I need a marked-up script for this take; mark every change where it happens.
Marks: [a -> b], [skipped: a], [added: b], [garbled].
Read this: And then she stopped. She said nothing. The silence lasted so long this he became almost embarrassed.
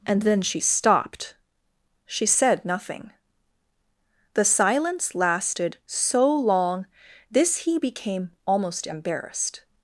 And then she stopped. She said nothing. The silence lasted so long this he became almost embarrassed.